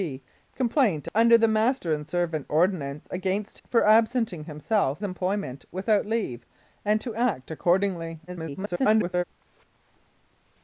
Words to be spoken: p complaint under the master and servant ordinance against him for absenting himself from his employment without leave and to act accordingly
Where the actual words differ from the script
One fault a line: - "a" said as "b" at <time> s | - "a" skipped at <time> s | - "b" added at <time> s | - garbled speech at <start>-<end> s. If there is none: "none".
- "him" skipped at 3.6 s
- "from his" skipped at 5.0 s
- garbled speech at 8.3-9.2 s